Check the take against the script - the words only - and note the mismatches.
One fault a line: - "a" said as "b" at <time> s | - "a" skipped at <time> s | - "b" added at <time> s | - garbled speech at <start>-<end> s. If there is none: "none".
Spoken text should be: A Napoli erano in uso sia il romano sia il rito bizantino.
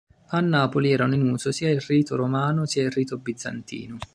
- "rito" added at 1.8 s